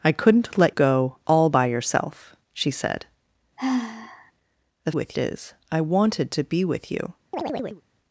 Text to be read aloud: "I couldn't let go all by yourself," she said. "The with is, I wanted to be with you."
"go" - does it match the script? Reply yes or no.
yes